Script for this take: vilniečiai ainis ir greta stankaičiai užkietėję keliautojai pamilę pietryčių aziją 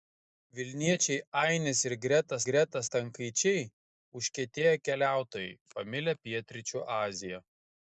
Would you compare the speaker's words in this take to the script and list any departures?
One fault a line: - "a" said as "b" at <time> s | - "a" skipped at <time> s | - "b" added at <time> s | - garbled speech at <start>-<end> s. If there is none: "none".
- "greta" added at 2.5 s